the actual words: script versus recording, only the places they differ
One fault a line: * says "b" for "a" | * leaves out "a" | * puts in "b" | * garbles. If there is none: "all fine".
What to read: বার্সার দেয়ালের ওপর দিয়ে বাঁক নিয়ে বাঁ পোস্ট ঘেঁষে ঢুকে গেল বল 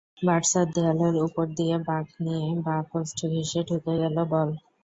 all fine